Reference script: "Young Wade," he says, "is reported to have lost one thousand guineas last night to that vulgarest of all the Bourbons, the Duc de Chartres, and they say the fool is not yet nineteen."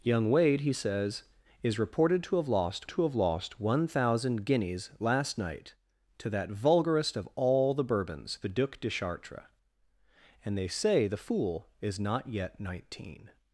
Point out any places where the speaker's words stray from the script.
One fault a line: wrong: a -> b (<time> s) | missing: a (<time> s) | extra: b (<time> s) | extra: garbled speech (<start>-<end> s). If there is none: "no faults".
extra: to have lost (2.9 s)